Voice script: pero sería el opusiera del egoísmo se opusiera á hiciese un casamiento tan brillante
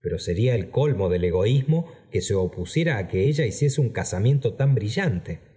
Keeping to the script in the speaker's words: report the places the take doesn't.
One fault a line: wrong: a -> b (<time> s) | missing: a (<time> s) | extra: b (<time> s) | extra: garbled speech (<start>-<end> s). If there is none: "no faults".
wrong: opusiera -> colmo (0.7 s)
extra: que (2.1 s)
extra: que ella (3.1 s)